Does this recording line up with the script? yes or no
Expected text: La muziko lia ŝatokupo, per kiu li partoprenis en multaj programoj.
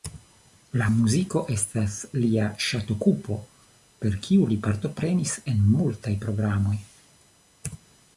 no